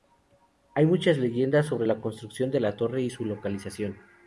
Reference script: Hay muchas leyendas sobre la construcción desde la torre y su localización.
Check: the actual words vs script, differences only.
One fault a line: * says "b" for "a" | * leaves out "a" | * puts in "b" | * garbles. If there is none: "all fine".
* says "de" for "desde"